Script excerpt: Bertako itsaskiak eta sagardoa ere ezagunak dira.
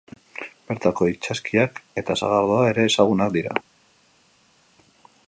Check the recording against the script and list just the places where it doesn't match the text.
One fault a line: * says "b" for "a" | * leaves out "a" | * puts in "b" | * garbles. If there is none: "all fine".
all fine